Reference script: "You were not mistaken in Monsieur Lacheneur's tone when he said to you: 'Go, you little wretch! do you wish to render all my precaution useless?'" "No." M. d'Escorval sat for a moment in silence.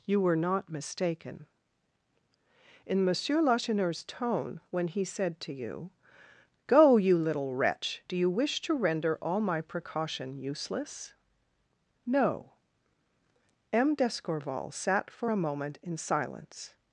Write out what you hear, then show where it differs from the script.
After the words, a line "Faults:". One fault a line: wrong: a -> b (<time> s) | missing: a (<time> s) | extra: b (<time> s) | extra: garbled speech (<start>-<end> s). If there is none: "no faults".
"You were not mistaken in Monsieur Lacheneur's tone when he said to you: 'Go, you little wretch! do you wish to render all my precaution useless?'" "No." M. d'Escorval sat for a moment in silence.
Faults:
no faults